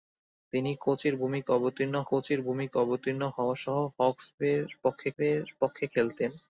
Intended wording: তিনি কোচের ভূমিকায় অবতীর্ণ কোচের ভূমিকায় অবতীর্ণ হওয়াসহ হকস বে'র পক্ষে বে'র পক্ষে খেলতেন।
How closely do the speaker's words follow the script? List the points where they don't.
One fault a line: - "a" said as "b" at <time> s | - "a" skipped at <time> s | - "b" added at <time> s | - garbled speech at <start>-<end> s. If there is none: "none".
none